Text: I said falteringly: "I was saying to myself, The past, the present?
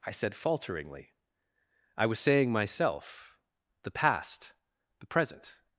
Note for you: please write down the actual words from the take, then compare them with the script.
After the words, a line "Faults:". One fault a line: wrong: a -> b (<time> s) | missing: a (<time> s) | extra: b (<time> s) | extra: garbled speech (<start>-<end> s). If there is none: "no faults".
I said falteringly: "I was saying myself, The past, the present?
Faults:
missing: to (2.5 s)